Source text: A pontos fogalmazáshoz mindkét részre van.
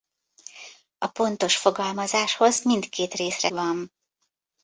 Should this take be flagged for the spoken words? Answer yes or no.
no